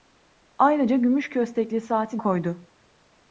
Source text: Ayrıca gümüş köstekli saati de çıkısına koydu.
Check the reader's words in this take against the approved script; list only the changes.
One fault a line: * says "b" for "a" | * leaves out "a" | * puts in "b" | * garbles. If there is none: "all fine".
* leaves out "de çıkısına"